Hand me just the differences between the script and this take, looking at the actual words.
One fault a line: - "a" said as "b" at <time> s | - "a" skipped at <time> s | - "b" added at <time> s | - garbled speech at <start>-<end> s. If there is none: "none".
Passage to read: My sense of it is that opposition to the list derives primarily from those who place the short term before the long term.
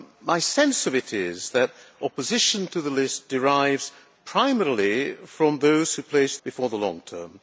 - "the short term" skipped at 6.4 s